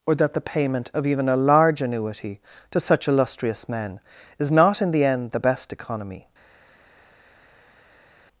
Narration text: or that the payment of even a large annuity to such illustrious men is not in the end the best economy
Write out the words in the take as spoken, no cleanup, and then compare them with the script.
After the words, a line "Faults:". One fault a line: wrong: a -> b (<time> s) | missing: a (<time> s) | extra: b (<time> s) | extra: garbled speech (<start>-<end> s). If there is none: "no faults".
or that the payment of even a large annuity to such illustrious men is not in the end the best economy
Faults:
no faults